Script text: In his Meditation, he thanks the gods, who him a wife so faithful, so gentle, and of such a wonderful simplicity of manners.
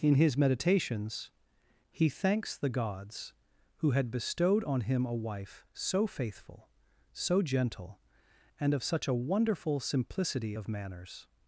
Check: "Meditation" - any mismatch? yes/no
yes